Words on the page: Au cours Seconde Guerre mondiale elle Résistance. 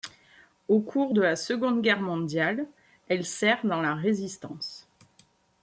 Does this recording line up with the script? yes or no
no